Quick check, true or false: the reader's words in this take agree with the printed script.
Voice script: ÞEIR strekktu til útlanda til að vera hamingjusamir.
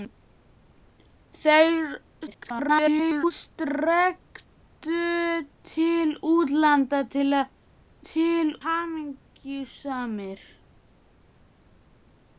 false